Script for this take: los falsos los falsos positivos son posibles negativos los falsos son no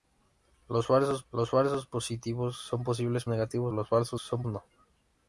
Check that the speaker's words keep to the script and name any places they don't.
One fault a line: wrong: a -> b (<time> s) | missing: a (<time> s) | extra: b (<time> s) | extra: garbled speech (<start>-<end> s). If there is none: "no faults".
no faults